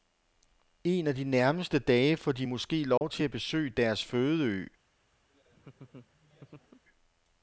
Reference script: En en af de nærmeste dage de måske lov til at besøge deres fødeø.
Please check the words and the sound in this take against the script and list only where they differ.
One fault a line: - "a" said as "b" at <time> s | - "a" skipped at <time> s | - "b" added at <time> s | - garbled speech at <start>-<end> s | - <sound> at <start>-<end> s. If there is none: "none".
- "en" skipped at 1.1 s
- "får" added at 2.2 s
- dropout at 3.0-3.0 s
- laugh at 5.3-6.8 s